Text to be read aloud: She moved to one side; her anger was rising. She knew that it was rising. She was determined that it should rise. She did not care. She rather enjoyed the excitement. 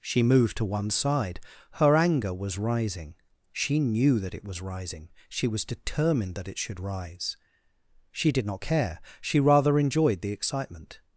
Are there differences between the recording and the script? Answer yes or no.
no